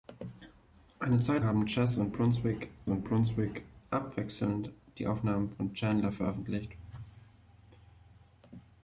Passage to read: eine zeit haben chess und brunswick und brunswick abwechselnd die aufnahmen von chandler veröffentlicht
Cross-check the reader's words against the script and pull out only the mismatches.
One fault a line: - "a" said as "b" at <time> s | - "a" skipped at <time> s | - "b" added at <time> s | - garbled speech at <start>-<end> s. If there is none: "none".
none